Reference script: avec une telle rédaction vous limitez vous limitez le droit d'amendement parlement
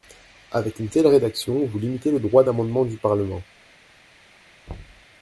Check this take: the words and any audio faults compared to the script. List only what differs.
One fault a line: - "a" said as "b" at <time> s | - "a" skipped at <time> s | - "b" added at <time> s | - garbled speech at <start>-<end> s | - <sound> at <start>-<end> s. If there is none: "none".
- "vous limitez" skipped at 2.1 s
- "du" added at 2.9 s
- thud at 4.7-5.0 s